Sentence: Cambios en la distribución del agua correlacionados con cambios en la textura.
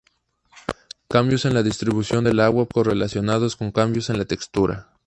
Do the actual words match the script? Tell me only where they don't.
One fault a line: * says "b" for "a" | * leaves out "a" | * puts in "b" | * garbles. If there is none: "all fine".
all fine